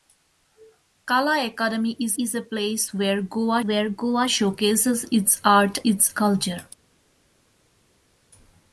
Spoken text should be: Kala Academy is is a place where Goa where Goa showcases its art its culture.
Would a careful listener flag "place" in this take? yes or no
no